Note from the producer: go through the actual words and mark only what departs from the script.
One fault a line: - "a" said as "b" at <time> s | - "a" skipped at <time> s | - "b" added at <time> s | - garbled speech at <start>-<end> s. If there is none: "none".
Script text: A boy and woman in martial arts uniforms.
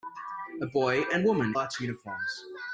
- "in martial" skipped at 1.5 s